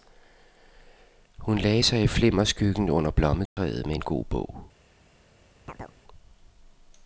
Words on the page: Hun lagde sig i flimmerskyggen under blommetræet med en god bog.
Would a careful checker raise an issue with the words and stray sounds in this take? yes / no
yes